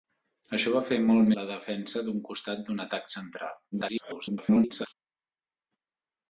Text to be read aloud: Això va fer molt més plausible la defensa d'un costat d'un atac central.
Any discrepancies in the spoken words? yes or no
yes